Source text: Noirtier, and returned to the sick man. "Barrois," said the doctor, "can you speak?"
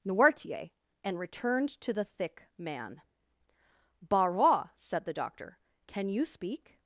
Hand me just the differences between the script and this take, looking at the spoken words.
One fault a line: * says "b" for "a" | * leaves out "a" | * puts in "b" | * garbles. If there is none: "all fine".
* says "thick" for "sick"